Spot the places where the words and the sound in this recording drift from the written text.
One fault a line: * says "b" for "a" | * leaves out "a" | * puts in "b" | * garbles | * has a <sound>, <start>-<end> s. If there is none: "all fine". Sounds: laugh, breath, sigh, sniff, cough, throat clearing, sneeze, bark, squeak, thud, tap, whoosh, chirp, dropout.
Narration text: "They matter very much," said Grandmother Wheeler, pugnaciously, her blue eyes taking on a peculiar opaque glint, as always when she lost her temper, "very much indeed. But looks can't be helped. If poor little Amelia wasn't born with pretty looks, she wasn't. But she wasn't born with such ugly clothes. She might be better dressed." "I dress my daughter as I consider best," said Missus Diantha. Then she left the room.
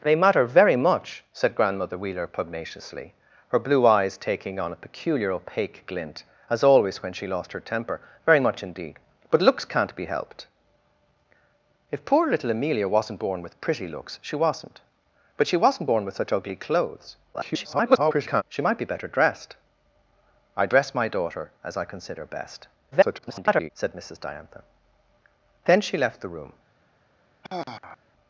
* garbles
* garbles
* has a sigh, 27.4-28.0 s